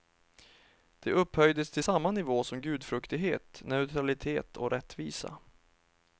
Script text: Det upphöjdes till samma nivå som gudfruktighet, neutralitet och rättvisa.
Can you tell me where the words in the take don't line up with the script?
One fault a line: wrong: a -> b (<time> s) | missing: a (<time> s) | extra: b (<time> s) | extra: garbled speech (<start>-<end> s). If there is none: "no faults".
no faults